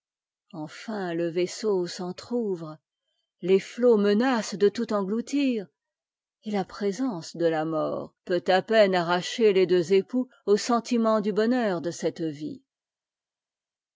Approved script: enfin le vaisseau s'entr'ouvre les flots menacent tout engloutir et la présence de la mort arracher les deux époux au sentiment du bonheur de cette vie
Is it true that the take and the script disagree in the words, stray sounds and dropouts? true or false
true